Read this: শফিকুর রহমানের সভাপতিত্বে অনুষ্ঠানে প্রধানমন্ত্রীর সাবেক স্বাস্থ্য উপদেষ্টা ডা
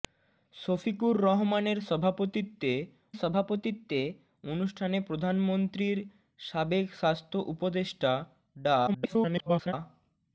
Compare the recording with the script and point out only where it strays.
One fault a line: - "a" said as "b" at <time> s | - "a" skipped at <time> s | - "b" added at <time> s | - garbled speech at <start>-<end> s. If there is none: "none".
- "সভাপতিত্বে" added at 3.1 s
- garbled speech at 8.9-9.7 s